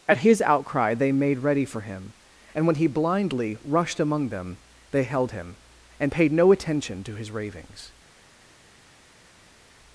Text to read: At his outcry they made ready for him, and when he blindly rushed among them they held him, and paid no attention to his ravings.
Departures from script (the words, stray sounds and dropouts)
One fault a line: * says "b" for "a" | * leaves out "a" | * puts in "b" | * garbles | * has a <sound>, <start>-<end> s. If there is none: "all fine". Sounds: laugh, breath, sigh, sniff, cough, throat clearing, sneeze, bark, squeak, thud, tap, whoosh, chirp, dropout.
all fine